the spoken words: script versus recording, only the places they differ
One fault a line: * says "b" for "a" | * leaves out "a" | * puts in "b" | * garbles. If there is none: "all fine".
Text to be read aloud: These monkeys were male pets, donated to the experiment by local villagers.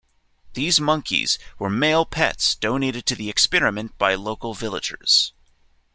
all fine